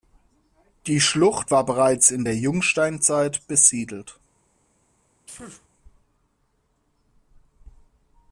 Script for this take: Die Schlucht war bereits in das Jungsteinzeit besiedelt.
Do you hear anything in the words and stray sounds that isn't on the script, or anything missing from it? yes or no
yes